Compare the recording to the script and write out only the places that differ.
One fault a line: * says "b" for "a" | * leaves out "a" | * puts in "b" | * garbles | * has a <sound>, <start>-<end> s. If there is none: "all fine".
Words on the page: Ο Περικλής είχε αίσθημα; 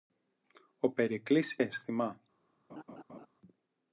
* leaves out "είχε"
* has a laugh, 2.7-3.3 s